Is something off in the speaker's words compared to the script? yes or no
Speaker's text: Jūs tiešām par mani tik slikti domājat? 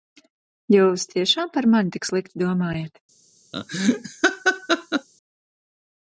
no